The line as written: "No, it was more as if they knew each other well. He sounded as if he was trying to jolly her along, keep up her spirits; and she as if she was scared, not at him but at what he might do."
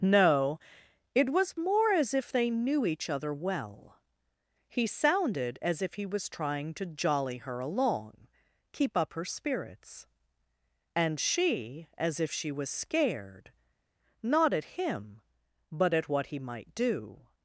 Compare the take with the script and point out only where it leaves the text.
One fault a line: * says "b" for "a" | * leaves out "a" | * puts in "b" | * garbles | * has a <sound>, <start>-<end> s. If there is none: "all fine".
all fine